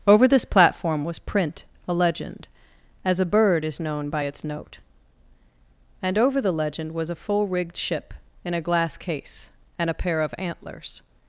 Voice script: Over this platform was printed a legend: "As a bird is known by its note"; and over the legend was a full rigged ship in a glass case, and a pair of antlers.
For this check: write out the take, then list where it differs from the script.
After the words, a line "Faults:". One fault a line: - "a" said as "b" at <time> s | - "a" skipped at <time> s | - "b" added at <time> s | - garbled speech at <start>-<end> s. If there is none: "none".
Over this platform was print a legend: "As a bird is known by its note"; and over the legend was a full rigged ship in a glass case, and a pair of antlers.
Faults:
- "printed" said as "print" at 1.2 s